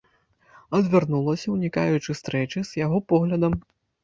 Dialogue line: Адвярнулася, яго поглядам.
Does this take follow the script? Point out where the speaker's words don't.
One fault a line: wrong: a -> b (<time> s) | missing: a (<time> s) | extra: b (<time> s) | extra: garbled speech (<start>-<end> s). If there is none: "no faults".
extra: унікаючы стрэчы з (1.6 s)